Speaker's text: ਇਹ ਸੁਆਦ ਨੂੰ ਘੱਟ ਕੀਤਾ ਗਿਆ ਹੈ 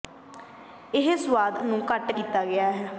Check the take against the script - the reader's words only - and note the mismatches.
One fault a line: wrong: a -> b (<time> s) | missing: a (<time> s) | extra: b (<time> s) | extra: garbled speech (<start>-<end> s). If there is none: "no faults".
no faults